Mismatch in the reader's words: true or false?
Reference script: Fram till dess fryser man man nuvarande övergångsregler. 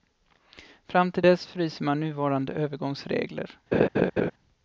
true